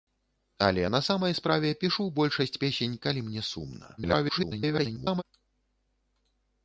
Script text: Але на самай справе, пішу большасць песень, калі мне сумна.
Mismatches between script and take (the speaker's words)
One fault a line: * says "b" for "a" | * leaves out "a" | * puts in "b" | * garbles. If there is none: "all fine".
* garbles